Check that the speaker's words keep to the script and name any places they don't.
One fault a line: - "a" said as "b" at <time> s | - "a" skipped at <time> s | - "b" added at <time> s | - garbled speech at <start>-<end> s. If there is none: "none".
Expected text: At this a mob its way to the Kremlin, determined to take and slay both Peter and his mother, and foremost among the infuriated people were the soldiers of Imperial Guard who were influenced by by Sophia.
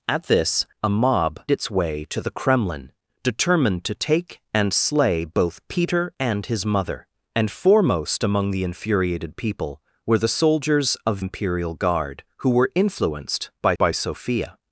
none